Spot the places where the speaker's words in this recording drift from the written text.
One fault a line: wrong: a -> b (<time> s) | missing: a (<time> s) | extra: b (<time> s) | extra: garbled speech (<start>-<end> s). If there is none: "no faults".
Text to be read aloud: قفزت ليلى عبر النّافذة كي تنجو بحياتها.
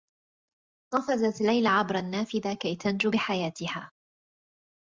no faults